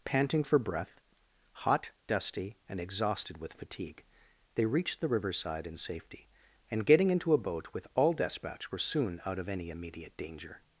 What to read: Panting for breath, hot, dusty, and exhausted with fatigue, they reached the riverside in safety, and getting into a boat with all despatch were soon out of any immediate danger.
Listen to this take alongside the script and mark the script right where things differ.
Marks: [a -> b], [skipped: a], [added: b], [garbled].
Panting for breath, hot, dusty, and exhausted with fatigue, they reached the riverside in safety, and getting into a boat with all despatch were soon out of any immediate danger.